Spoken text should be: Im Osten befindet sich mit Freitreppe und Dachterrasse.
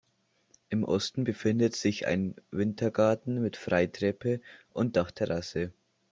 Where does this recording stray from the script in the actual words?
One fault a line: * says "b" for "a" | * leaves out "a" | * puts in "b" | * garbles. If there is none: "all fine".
* puts in "ein Wintergarten"